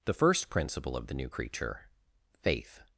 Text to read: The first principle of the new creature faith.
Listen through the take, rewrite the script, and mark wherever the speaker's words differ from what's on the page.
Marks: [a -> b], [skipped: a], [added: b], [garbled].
The first principle of the new creature faith.